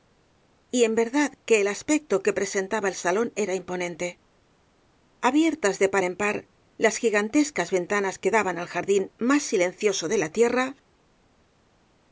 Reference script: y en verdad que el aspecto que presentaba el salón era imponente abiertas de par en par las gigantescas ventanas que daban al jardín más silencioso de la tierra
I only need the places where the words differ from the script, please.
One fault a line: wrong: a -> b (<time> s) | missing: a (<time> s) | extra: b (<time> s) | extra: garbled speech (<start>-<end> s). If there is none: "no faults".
no faults